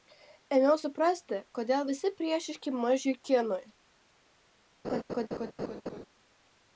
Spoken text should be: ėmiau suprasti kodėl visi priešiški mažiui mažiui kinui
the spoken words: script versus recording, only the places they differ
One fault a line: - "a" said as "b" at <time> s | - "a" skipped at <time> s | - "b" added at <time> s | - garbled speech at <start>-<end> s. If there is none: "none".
- "mažiui" skipped at 3.2 s